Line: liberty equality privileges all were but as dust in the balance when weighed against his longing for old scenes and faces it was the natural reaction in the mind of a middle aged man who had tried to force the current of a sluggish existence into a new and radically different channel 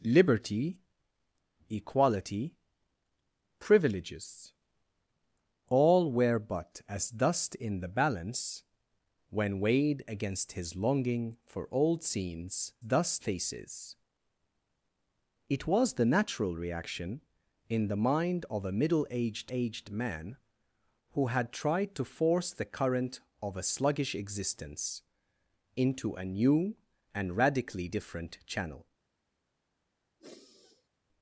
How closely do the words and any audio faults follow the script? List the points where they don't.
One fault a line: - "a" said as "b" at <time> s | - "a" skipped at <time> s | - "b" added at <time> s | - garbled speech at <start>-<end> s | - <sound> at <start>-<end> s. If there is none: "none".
- "and" said as "dust" at 12.8 s
- "aged" added at 19.5 s
- sigh at 30.2-30.9 s